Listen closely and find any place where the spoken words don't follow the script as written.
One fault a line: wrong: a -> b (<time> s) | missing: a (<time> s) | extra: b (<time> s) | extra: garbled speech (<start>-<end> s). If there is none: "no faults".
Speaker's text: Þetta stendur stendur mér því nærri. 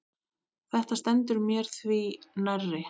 missing: stendur (1.4 s)